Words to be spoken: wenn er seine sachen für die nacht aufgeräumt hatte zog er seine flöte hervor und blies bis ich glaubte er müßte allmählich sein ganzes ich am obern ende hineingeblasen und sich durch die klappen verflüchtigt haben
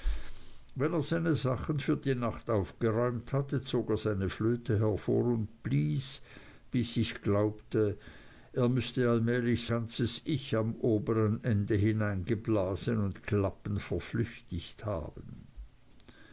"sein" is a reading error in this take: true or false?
true